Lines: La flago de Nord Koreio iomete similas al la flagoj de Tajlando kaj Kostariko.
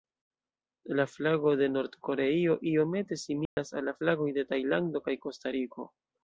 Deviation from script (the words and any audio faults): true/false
true